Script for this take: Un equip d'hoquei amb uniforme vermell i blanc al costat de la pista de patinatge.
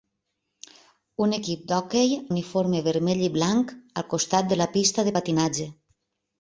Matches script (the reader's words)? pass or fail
fail